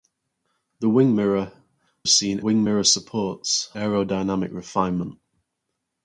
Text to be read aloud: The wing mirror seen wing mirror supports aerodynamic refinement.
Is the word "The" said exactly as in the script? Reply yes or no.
yes